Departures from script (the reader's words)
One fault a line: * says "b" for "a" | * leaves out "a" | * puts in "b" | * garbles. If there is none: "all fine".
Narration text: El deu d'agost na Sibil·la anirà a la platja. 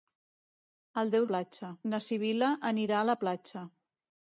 * says "platja" for "d'agost"